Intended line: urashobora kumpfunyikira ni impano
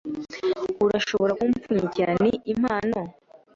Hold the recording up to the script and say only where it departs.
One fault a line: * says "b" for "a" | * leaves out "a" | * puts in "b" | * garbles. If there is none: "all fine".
all fine